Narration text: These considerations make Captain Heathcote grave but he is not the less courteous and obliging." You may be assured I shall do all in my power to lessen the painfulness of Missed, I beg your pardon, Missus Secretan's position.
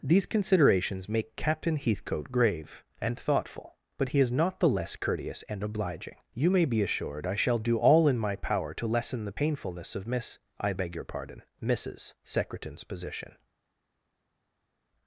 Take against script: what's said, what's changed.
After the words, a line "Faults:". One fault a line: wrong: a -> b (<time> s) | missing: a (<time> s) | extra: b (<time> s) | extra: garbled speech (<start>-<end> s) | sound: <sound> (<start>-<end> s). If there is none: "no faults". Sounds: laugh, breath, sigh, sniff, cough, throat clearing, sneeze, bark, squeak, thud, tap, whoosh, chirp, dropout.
These considerations make Captain Heathcote grave and thoughtful, but he is not the less courteous and obliging." You may be assured I shall do all in my power to lessen the painfulness of Miss, I beg your pardon, Missus Secretan's position.
Faults:
extra: and thoughtful (3.0 s)
wrong: Missed -> Miss (10.1 s)